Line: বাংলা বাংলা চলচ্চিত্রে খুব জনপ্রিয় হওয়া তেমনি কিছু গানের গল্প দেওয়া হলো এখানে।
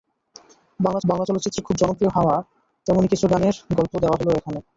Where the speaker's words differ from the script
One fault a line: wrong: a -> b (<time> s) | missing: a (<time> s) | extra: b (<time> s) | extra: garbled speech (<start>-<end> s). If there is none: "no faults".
no faults